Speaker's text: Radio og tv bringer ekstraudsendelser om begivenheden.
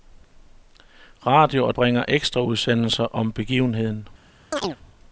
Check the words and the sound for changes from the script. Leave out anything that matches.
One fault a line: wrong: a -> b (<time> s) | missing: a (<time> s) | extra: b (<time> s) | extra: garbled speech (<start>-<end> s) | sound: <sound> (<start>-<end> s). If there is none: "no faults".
missing: tv (1.8 s)
sound: chirp (4.5-4.8 s)